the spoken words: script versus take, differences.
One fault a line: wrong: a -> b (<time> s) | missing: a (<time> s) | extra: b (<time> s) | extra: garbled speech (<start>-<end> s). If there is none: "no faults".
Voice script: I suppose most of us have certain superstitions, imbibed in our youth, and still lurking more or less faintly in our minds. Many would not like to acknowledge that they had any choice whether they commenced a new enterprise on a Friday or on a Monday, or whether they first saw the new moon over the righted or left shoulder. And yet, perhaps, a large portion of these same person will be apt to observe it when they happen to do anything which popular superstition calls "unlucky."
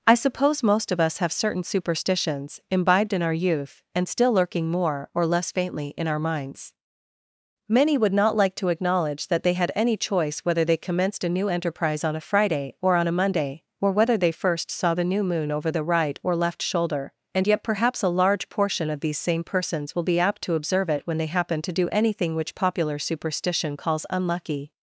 wrong: righted -> right (15.8 s)
wrong: person -> persons (19.4 s)